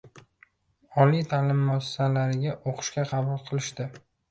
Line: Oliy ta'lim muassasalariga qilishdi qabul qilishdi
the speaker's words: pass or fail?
fail